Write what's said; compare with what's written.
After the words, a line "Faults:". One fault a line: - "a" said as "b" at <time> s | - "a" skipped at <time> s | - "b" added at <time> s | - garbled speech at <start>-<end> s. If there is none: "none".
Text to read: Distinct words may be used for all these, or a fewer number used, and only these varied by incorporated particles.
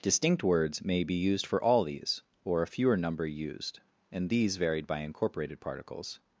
Distinct words may be used for all these, or a fewer number used, and these varied by incorporated particles.
Faults:
- "only" skipped at 4.3 s